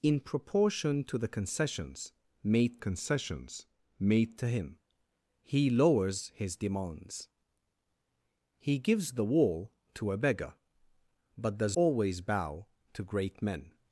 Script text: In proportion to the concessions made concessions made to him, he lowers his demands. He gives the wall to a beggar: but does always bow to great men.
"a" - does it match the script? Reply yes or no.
yes